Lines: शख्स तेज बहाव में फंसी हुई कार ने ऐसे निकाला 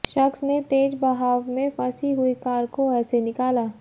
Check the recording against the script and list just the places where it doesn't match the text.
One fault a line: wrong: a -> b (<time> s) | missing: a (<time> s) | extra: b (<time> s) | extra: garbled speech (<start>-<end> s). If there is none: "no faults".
extra: ने (0.4 s)
wrong: ने -> को (2.7 s)